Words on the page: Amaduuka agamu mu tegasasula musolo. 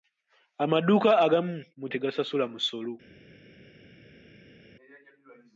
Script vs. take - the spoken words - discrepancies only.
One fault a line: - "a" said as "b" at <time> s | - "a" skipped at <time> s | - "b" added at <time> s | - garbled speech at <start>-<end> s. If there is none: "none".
none